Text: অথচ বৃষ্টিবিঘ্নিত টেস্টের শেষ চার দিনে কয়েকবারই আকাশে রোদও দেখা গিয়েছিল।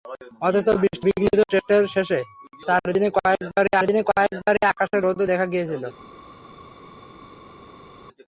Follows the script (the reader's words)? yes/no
no